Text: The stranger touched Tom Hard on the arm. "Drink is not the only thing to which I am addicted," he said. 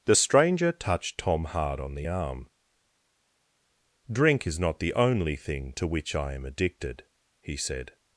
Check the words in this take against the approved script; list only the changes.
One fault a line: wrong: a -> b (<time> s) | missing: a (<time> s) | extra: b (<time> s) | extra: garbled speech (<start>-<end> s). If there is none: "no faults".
no faults